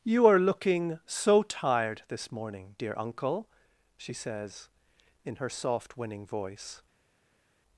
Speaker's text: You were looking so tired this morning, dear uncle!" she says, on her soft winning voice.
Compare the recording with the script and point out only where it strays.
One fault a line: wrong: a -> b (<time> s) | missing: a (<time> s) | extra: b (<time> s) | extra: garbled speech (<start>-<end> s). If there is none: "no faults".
wrong: were -> are (0.2 s)
wrong: on -> in (5.2 s)